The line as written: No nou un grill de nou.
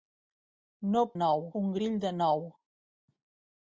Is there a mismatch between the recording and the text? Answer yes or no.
no